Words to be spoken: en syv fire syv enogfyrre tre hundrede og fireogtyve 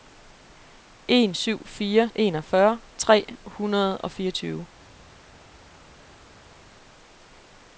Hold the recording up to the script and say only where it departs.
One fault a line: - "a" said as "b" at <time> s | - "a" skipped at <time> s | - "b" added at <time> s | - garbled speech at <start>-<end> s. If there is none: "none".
- "syv" skipped at 2.1 s